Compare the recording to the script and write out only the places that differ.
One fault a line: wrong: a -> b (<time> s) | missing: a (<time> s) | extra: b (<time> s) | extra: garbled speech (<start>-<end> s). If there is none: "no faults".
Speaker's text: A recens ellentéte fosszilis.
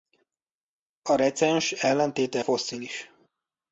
no faults